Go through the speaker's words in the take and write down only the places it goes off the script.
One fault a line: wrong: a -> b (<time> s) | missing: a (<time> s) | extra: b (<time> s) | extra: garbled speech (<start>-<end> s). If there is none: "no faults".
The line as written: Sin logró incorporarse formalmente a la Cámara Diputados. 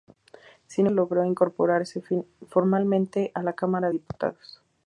no faults